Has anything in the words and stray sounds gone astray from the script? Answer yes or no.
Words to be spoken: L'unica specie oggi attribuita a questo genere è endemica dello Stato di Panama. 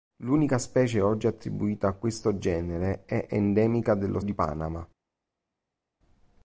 yes